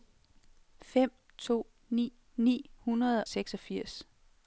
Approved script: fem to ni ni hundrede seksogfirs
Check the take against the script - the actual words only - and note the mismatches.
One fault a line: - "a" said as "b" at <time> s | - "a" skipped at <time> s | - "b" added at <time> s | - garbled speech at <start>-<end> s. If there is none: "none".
none